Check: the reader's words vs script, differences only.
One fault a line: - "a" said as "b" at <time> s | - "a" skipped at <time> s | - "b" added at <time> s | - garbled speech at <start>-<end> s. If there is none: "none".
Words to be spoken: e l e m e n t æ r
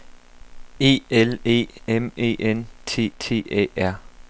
- "t" added at 3.2 s